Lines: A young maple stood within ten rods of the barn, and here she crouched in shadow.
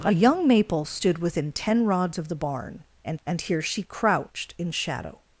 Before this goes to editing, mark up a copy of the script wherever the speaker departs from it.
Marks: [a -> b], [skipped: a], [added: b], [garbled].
A young maple stood within ten rods of the barn, and [added: and] here she crouched in shadow.